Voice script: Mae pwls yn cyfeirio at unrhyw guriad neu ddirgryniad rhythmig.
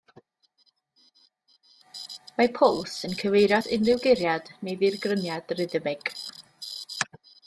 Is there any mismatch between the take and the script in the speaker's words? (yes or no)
no